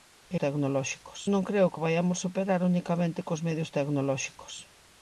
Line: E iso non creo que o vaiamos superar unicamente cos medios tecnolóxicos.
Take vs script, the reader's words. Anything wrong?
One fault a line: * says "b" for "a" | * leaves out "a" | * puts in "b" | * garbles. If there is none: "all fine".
* says "tecnolóxicos" for "iso"